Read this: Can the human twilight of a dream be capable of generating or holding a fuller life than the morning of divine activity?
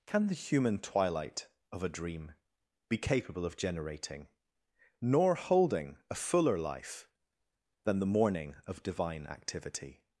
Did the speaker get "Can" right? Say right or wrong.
right